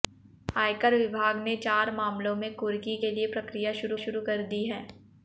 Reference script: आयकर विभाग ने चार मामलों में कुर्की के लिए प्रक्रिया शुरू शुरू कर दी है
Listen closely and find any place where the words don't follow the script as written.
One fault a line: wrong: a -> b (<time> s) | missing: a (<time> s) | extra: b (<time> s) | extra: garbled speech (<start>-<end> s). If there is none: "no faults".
no faults